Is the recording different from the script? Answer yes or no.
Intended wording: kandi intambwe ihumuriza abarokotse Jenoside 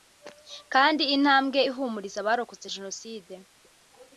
no